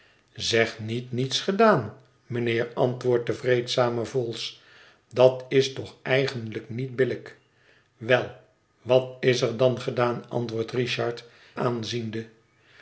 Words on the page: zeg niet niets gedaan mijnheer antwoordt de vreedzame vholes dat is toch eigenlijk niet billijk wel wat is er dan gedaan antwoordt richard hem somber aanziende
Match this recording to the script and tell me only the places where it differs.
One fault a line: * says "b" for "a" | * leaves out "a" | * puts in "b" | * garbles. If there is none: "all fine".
* leaves out "hem somber"